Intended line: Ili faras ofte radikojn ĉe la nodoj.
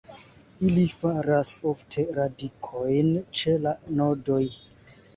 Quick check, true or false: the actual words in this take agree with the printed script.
true